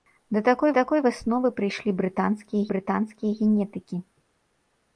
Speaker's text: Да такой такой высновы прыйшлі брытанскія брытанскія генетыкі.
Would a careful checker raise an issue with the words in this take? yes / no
no